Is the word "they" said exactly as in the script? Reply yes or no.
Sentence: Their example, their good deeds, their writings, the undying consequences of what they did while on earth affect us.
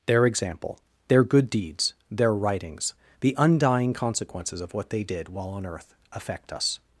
yes